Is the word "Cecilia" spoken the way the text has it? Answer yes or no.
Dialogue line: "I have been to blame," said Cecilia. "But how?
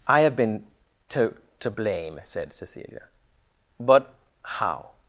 yes